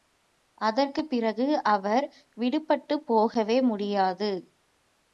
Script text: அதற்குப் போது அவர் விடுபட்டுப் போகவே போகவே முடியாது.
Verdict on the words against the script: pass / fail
fail